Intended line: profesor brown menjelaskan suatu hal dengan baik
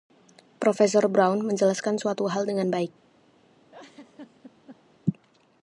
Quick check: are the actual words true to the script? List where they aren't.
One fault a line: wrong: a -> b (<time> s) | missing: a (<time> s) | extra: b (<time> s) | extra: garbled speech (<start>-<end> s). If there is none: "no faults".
no faults